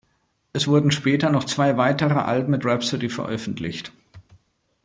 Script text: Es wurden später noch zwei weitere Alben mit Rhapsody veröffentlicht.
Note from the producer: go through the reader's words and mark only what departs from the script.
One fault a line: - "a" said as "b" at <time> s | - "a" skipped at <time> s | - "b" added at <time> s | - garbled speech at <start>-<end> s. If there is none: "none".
none